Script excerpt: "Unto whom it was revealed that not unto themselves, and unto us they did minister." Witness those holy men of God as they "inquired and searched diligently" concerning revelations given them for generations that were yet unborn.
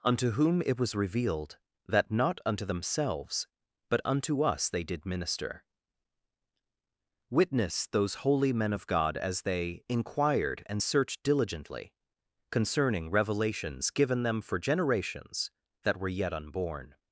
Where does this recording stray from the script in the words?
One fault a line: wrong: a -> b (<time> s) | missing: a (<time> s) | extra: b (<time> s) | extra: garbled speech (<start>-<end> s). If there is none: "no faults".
wrong: and -> but (3.9 s)